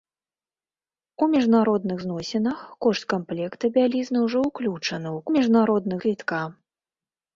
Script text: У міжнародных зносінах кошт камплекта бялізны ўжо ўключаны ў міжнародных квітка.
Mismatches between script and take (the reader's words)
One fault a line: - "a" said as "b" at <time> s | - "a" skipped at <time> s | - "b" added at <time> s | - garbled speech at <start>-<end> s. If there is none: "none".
none